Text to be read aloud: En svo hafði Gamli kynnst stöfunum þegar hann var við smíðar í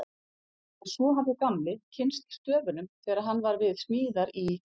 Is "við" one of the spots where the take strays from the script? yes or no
no